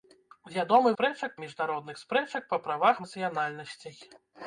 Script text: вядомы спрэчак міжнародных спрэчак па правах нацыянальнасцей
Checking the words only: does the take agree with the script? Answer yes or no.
yes